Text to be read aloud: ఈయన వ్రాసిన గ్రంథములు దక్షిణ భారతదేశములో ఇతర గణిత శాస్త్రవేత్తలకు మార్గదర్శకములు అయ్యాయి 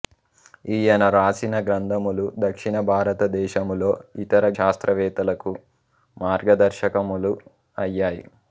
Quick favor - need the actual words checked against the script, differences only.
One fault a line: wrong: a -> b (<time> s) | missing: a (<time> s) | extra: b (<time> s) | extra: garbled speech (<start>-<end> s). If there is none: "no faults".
missing: గణిత (4.5 s)